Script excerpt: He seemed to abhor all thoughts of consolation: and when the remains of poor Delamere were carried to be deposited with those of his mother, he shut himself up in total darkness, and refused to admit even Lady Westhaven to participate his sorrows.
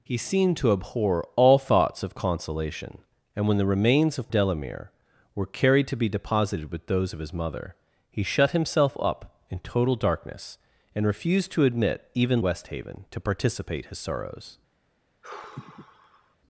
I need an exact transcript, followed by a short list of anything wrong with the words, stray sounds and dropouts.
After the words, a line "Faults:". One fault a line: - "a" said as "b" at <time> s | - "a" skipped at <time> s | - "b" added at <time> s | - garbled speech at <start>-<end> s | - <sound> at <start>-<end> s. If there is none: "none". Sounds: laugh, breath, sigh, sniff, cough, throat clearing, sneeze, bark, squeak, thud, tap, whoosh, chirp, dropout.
He seemed to abhor all thoughts of consolation: and when the remains of Delamere were carried to be deposited with those of his mother, he shut himself up in total darkness, and refused to admit even Westhaven to participate his sorrows.
Faults:
- "poor" skipped at 4.3 s
- "Lady" skipped at 12.4 s
- sigh at 15.2-16.4 s